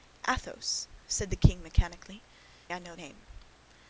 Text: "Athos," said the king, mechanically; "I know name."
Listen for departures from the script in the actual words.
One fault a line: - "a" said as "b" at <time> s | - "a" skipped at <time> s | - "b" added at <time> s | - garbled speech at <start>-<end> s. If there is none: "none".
none